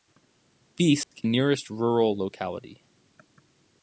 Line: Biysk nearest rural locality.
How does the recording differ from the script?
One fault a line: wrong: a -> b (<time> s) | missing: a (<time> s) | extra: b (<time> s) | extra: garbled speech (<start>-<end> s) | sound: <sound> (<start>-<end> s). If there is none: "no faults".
sound: dropout (1.0-1.1 s)